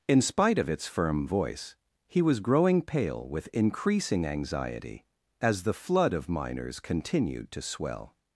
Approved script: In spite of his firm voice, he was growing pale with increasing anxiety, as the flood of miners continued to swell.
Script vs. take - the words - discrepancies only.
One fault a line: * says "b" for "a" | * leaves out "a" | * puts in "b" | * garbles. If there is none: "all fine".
* says "its" for "his"